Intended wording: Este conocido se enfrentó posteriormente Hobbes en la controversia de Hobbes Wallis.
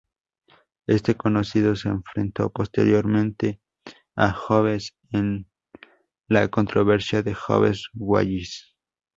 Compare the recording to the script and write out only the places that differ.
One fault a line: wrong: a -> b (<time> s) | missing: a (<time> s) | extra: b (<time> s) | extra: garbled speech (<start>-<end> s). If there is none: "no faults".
extra: a (4.2 s)